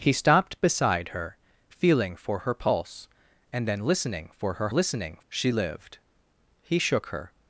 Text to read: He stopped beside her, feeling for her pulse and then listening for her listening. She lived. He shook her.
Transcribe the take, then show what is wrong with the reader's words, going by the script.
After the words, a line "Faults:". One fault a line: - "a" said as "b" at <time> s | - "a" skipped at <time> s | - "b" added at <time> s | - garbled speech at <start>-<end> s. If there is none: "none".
He stopped beside her, feeling for her pulse and then listening for her listening. She lived. He shook her.
Faults:
none